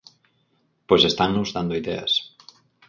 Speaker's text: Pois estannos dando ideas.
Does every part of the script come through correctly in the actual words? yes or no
yes